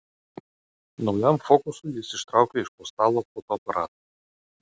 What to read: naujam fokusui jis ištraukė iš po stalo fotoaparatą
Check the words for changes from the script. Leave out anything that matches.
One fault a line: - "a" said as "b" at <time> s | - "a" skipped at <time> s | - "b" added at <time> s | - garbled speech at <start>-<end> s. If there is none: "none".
none